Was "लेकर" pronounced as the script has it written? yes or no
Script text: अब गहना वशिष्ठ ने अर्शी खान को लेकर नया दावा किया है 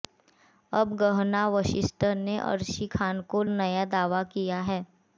no